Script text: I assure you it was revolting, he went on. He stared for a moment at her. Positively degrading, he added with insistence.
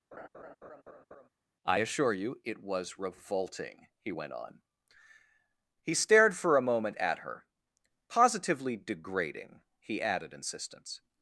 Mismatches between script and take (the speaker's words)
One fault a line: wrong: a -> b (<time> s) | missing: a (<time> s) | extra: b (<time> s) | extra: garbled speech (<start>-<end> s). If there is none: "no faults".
missing: with (10.3 s)